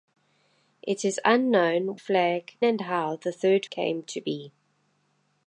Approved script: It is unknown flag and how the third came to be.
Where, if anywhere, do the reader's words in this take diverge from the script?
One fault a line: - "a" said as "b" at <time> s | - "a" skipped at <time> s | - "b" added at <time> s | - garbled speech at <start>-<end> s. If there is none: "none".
none